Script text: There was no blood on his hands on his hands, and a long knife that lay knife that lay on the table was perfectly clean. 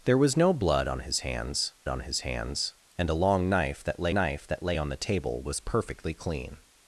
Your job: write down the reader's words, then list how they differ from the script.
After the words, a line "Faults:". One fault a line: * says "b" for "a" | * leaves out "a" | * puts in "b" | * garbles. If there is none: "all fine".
There was no blood on his hands on his hands, and a long knife that lay knife that lay on the table was perfectly clean.
Faults:
all fine